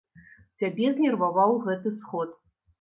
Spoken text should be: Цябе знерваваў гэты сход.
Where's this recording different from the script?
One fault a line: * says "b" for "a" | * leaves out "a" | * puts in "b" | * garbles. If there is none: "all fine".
all fine